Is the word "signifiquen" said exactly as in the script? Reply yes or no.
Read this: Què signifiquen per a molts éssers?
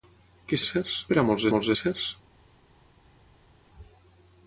no